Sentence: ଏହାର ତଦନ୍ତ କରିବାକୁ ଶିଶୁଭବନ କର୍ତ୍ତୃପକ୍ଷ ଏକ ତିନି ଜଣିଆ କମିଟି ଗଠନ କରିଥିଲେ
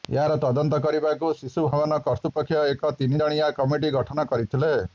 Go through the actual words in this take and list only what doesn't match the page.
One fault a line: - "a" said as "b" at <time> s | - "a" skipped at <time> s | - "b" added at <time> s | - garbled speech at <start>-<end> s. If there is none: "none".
none